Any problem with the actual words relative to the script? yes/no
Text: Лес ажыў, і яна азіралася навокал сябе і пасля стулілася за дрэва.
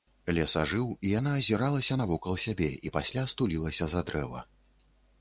no